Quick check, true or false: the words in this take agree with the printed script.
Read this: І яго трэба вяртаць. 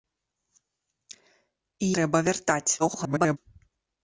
false